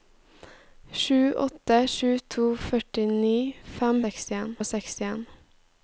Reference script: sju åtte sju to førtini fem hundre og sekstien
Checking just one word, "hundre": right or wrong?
wrong